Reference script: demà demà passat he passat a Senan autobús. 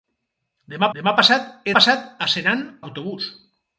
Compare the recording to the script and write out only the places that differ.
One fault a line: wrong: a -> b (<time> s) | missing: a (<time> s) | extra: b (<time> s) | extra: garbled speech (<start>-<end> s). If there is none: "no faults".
no faults